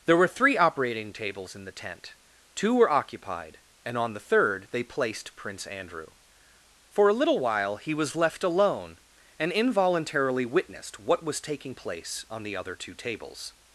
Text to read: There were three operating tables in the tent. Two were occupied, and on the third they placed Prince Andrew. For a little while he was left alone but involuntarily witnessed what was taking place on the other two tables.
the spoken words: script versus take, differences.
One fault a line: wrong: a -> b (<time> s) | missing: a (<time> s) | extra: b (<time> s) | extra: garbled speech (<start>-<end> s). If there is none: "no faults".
wrong: but -> and (9.4 s)